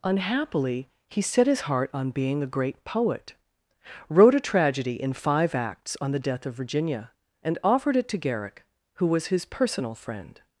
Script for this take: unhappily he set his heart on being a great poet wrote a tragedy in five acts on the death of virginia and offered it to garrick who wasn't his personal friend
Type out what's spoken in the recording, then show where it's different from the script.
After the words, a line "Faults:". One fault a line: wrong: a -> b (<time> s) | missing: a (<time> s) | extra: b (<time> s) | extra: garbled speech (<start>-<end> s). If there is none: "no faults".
unhappily he set his heart on being a great poet wrote a tragedy in five acts on the death of virginia and offered it to garrick who was his personal friend
Faults:
wrong: wasn't -> was (9.1 s)